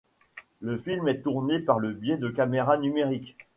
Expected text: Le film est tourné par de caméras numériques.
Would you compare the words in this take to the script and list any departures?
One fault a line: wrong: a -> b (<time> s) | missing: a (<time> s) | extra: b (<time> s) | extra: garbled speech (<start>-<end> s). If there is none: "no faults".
extra: le biais (1.8 s)